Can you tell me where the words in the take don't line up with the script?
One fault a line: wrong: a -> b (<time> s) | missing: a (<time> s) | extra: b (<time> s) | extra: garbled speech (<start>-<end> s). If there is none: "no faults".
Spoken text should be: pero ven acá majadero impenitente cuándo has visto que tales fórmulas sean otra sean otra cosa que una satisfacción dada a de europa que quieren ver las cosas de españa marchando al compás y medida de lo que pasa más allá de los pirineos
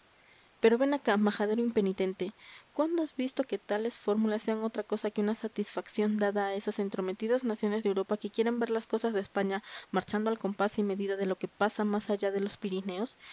missing: sean otra (4.8 s)
extra: esas entrometidas naciones (6.5 s)